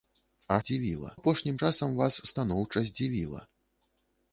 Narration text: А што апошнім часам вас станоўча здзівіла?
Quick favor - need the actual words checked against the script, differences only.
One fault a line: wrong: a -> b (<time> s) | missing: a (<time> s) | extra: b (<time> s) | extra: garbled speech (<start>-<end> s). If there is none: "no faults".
wrong: што -> здзівіла (0.6 s)